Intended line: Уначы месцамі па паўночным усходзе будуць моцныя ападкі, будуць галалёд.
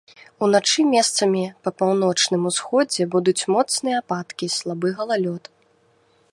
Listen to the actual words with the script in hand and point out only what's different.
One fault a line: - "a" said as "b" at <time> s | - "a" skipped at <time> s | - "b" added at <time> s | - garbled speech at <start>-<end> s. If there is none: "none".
- "будуць" said as "слабы" at 4.6 s